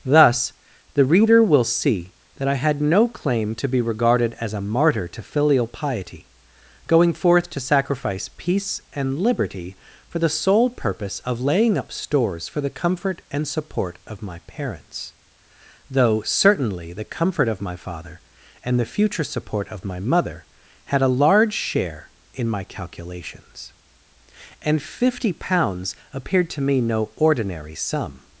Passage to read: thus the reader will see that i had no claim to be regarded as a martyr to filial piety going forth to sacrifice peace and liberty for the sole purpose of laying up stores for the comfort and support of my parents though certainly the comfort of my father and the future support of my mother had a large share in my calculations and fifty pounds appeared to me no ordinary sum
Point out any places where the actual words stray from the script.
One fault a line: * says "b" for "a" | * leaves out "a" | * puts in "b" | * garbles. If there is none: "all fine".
all fine